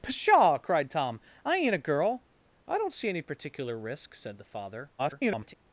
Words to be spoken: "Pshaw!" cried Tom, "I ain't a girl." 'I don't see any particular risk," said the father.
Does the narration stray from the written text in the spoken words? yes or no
yes